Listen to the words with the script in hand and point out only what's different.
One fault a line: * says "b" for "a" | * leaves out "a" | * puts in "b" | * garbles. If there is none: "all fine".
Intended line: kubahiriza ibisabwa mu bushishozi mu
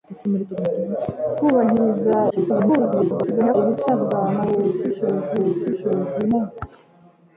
* garbles
* puts in "bushishozi"